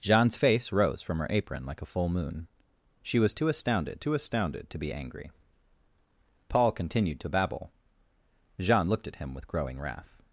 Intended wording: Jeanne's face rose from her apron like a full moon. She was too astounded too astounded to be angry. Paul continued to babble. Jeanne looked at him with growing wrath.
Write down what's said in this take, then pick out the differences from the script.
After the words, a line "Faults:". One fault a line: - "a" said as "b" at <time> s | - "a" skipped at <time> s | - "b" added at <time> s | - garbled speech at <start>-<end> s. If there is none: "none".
Jeanne's face rose from her apron like a full moon. She was too astounded too astounded to be angry. Paul continued to babble. Jeanne looked at him with growing wrath.
Faults:
none